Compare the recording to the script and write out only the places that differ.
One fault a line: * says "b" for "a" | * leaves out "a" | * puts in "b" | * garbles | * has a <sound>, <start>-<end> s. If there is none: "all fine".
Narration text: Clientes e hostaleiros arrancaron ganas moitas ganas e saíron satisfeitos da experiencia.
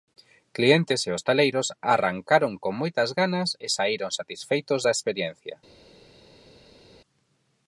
* says "con" for "ganas"